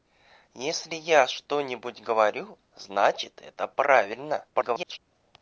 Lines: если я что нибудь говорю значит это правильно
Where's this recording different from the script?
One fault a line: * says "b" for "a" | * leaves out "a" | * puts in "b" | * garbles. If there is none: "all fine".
* garbles